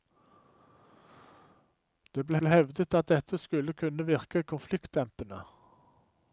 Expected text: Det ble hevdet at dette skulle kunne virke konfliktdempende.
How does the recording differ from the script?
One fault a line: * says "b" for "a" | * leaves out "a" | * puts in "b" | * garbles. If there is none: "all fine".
* puts in "ble"